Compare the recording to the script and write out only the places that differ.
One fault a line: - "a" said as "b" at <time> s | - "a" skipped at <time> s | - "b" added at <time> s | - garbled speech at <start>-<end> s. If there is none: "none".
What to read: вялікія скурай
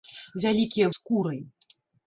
none